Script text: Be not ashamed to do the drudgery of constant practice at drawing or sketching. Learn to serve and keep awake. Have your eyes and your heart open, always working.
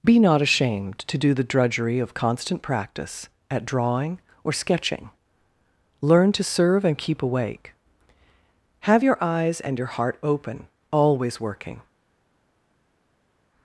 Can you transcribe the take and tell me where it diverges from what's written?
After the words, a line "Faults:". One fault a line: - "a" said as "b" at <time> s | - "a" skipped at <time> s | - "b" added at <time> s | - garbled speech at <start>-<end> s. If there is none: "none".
Be not ashamed to do the drudgery of constant practice at drawing or sketching. Learn to serve and keep awake. Have your eyes and your heart open, always working.
Faults:
none